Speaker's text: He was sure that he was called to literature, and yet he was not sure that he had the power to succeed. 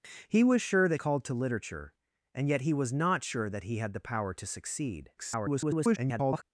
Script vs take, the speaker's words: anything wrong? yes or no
yes